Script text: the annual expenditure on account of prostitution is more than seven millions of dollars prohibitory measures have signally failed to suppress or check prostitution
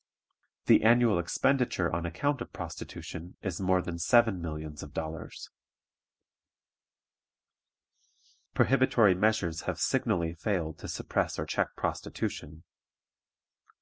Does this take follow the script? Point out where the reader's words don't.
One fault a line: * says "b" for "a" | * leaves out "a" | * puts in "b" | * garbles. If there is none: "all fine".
all fine